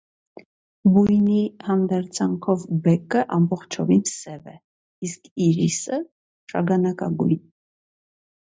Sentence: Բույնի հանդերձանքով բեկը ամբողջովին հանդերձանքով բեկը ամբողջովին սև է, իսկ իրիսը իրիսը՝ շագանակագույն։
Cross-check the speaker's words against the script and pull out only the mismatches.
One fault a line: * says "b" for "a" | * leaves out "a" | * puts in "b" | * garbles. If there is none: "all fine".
* leaves out "հանդերձանքով բեկը ամբողջովին"
* leaves out "իրիսը"